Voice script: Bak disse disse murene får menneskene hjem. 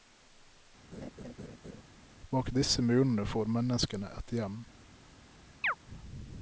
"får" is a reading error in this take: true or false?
false